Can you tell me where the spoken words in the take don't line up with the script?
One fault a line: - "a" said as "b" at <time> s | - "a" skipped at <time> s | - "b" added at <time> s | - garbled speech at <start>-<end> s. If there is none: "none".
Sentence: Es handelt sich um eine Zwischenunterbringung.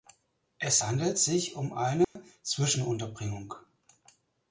none